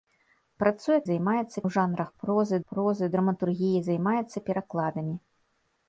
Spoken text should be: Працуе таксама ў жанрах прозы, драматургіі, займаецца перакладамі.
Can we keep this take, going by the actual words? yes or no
no